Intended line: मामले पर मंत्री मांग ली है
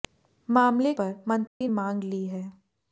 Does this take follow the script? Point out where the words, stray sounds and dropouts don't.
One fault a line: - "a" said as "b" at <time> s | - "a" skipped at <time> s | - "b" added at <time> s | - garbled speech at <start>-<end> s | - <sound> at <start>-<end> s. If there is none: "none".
- dropout at 1.5-1.6 s